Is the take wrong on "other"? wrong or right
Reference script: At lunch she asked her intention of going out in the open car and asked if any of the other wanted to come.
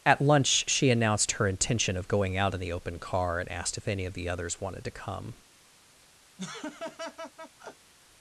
wrong